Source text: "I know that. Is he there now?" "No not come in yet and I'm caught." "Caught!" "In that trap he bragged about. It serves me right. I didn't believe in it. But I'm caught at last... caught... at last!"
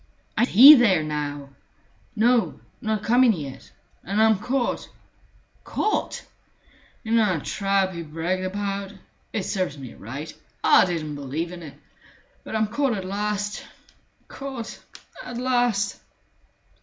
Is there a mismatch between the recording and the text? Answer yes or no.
yes